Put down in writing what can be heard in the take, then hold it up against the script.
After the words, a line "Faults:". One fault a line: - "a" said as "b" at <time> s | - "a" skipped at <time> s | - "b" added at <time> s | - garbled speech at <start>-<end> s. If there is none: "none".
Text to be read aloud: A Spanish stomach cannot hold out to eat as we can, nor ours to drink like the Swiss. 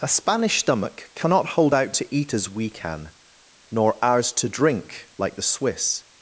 A Spanish stomach cannot hold out to eat as we can, nor ours to drink like the Swiss.
Faults:
none